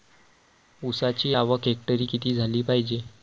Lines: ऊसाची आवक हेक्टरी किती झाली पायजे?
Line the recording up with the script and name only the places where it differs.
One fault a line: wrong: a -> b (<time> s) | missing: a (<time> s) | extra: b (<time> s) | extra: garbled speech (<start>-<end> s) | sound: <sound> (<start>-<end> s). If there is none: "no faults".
no faults